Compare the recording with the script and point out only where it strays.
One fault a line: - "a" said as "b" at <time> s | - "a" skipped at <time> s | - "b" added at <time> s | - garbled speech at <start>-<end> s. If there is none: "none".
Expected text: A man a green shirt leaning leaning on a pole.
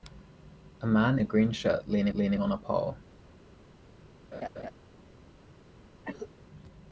none